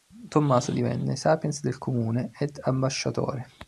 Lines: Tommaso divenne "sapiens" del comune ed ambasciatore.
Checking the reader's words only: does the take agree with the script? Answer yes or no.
yes